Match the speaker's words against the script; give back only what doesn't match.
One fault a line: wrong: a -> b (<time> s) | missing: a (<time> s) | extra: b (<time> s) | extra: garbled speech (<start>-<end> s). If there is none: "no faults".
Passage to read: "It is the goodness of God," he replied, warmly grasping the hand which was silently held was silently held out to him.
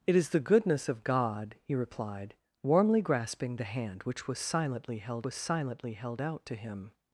no faults